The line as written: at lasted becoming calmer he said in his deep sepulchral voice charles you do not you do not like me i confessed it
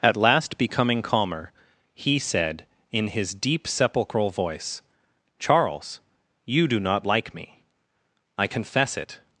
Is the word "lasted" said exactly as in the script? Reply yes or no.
no